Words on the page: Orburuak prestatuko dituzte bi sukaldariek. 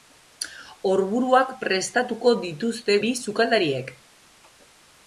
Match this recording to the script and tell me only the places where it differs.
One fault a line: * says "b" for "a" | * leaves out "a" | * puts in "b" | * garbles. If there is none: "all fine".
all fine